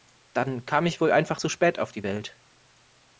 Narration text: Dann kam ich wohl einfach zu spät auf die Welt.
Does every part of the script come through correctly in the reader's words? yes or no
yes